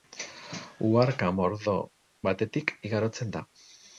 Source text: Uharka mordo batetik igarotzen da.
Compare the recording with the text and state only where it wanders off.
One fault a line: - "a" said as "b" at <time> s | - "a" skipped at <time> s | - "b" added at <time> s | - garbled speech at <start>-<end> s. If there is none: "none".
none